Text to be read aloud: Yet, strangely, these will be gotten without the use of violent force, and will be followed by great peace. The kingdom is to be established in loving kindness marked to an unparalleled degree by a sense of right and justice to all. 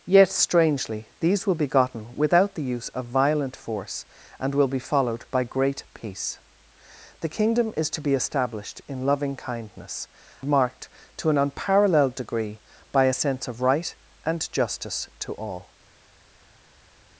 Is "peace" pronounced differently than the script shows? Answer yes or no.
no